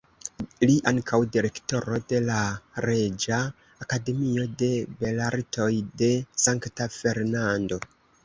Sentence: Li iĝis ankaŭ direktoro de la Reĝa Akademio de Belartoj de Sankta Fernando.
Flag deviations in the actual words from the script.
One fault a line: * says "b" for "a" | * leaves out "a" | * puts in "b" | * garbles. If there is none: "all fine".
* leaves out "iĝis"